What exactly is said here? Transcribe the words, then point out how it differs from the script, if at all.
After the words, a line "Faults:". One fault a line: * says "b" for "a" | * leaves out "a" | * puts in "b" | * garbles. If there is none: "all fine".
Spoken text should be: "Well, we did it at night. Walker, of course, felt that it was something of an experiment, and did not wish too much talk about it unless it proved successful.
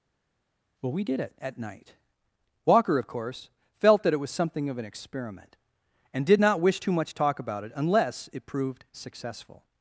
"Well, we did it at night. Walker, of course, felt that it was something of an experiment, and did not wish too much talk about it unless it proved successful.
Faults:
all fine